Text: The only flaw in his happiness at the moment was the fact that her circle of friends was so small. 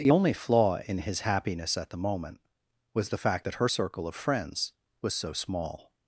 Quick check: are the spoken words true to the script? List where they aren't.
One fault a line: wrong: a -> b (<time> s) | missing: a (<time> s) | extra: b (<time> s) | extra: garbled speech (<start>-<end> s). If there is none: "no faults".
no faults